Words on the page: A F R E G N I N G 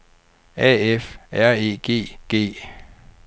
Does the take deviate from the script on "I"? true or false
true